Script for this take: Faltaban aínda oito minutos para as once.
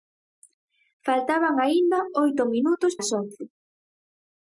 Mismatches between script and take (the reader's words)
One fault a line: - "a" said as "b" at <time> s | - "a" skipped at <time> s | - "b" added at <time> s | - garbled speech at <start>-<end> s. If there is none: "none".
- "para" skipped at 2.9 s